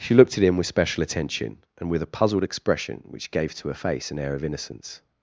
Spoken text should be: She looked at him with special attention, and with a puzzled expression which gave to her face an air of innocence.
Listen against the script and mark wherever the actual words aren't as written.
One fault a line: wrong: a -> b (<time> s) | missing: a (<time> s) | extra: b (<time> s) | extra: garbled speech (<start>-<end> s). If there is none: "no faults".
no faults